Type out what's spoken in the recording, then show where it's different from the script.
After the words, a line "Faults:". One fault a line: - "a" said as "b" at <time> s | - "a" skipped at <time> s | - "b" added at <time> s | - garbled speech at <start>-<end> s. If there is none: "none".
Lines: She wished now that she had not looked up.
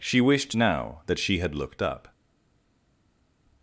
She wished now that she had looked up.
Faults:
- "not" skipped at 1.6 s